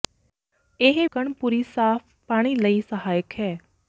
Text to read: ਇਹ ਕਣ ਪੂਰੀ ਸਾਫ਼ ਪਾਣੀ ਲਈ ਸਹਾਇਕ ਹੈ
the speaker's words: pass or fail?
pass